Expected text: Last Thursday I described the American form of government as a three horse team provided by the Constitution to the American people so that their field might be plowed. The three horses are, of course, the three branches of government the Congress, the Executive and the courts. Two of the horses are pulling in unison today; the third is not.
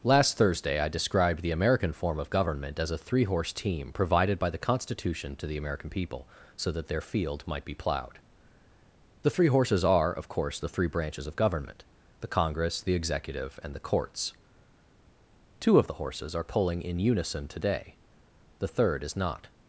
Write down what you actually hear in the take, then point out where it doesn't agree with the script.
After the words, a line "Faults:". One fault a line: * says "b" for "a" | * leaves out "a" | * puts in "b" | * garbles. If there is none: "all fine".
Last Thursday I described the American form of government as a three horse team provided by the Constitution to the American people so that their field might be plowed. The three horses are, of course, the three branches of government the Congress, the Executive and the courts. Two of the horses are pulling in unison today; the third is not.
Faults:
all fine